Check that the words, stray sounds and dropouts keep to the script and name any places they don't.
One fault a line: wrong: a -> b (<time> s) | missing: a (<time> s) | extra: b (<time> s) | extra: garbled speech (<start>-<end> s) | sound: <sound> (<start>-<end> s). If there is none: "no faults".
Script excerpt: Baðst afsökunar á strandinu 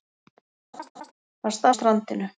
sound: laugh (0.7-1.1 s)
missing: afsökunar (1.7 s)